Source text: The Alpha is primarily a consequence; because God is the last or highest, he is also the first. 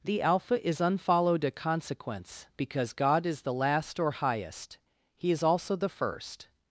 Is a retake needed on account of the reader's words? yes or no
yes